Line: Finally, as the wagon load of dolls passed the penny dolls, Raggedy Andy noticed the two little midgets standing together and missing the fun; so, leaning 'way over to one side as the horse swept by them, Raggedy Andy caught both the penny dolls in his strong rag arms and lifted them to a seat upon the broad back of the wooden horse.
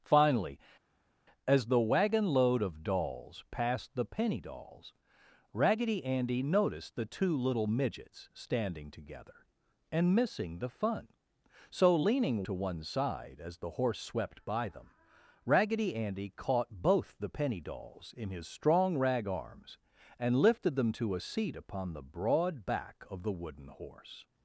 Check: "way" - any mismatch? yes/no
yes